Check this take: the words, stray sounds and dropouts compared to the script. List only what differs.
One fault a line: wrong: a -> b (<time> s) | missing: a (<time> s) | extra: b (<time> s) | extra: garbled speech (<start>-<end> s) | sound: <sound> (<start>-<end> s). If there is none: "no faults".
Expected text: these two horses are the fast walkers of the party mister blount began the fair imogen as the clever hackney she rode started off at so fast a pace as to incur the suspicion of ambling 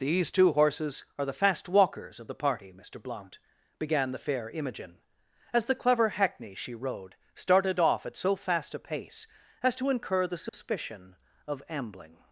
sound: dropout (10.5-10.5 s)